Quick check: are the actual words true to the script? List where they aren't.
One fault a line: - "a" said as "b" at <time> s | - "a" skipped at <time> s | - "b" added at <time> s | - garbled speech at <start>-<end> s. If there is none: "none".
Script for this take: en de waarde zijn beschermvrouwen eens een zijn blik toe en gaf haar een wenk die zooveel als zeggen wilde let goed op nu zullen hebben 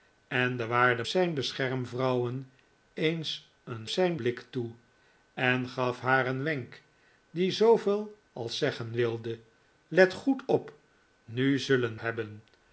none